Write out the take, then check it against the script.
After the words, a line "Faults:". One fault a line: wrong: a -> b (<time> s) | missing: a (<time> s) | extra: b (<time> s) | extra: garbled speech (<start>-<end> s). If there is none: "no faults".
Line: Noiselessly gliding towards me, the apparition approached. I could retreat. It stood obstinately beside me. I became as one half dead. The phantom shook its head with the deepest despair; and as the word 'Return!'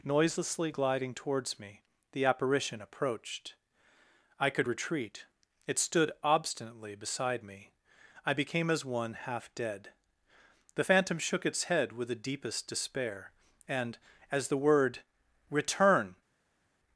Noiselessly gliding towards me, the apparition approached. I could retreat. It stood obstinately beside me. I became as one half dead. The phantom shook its head with the deepest despair; and as the word 'Return!'
Faults:
no faults